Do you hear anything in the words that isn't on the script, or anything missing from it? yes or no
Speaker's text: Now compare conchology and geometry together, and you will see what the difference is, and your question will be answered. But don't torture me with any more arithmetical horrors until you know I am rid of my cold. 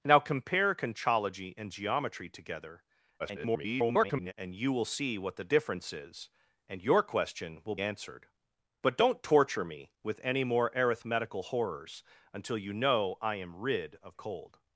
yes